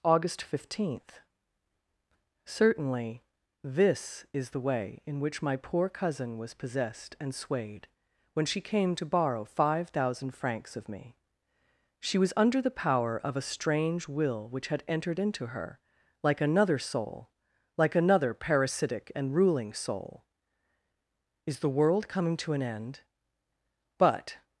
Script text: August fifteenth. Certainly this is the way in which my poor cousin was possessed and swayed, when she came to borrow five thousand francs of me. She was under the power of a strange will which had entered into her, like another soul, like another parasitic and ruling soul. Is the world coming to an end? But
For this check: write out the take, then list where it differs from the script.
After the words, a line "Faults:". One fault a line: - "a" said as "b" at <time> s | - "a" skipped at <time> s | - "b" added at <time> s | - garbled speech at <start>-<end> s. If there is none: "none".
August fifteenth. Certainly this is the way in which my poor cousin was possessed and swayed, when she came to borrow five thousand francs of me. She was under the power of a strange will which had entered into her, like another soul, like another parasitic and ruling soul. Is the world coming to an end? But
Faults:
none